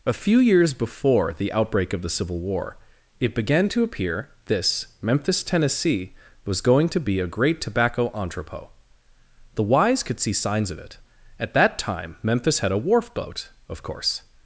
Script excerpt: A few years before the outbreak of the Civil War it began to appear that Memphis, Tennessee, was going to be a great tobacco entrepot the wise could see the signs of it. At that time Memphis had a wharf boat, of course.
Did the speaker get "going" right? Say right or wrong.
right